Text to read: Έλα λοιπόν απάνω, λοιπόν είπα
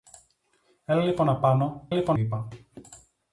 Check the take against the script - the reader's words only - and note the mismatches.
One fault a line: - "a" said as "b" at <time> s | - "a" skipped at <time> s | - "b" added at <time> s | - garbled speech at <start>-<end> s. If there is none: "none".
none